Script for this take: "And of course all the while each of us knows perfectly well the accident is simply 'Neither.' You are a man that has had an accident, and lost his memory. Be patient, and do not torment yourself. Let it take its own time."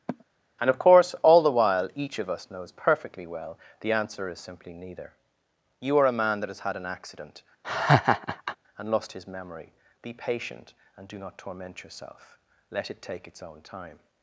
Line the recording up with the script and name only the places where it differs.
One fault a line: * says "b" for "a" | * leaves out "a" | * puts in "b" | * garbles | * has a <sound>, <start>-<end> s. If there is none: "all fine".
* has a sigh, 0.1-0.2 s
* says "answer" for "accident"
* has a laugh, 7.6-8.6 s